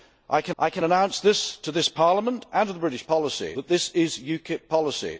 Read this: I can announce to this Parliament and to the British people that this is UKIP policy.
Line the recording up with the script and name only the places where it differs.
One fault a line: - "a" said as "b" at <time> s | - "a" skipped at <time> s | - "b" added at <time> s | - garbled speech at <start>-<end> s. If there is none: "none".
- "I can" added at 0.6 s
- "people" said as "policy" at 3.1 s